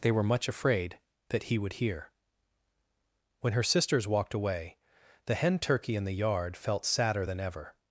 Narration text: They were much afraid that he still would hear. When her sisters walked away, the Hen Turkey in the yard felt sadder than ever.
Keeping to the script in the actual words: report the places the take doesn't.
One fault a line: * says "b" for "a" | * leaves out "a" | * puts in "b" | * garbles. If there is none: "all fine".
* leaves out "still"